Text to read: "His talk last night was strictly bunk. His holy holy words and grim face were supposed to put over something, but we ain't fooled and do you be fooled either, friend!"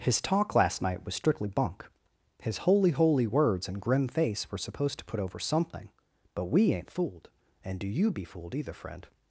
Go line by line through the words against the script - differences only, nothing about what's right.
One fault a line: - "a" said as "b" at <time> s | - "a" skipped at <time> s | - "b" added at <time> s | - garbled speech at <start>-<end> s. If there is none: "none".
none